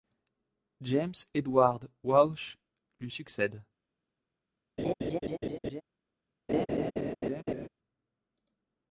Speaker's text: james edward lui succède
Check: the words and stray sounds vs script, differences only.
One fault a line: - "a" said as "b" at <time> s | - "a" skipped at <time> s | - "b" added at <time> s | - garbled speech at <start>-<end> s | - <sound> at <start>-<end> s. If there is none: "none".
- "walsh" added at 2.0 s
- laugh at 4.8-5.8 s
- laugh at 6.5-7.7 s